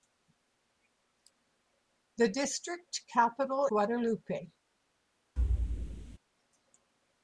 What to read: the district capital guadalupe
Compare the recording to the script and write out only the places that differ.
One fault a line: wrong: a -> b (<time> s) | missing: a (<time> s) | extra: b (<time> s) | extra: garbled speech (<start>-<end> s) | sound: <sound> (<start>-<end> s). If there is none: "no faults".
sound: thud (5.4-6.2 s)